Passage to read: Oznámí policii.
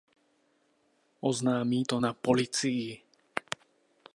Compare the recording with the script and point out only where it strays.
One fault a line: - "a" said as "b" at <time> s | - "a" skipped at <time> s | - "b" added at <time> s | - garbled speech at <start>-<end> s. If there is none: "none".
- "to na" added at 1.8 s